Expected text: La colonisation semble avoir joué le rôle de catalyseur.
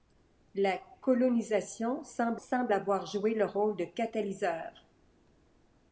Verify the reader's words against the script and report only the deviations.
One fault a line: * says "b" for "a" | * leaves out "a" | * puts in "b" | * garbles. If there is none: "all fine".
* puts in "semble"